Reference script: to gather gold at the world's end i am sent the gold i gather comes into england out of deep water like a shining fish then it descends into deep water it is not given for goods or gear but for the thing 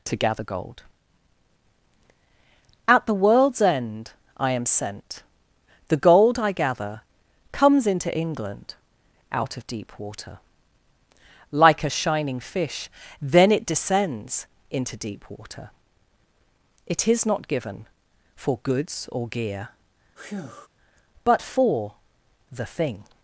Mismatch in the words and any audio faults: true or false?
true